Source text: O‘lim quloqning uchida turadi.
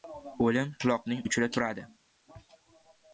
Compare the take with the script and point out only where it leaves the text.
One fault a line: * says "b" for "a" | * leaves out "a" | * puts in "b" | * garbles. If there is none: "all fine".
all fine